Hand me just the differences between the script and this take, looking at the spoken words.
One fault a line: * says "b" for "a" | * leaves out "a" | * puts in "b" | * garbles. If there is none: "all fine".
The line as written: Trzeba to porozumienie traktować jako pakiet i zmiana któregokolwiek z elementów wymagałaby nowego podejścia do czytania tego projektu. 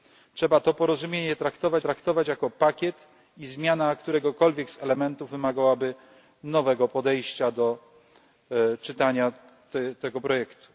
* puts in "traktować"